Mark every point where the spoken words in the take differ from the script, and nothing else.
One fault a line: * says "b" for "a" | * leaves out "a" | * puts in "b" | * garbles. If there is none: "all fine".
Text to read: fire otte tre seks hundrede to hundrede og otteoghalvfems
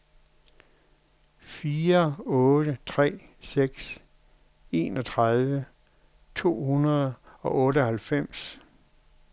* says "enogtredive" for "hundrede"